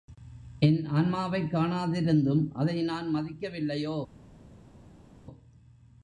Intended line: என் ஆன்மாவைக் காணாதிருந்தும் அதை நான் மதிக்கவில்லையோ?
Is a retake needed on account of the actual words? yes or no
no